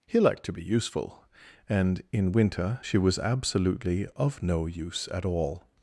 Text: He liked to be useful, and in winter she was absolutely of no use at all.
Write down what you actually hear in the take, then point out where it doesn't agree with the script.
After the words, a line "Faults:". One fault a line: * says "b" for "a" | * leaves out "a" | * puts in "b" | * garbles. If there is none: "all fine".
He liked to be useful, and in winter she was absolutely of no use at all.
Faults:
all fine